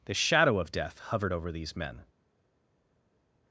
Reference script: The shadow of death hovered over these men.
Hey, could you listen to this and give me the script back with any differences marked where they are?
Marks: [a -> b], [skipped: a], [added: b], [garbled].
The shadow of death hovered over these men.